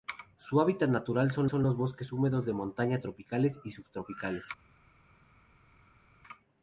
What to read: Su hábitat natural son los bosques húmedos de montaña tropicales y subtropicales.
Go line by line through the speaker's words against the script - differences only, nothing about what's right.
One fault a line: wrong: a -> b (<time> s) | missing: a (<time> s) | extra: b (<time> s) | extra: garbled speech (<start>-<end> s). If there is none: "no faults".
extra: son (1.4 s)